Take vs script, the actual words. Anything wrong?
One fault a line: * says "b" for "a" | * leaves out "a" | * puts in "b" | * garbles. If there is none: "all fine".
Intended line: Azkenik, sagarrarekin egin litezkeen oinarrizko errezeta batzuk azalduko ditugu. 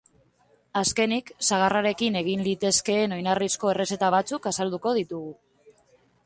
all fine